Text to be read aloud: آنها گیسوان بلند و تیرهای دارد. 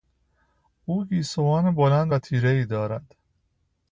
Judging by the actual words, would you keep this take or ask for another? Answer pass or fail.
fail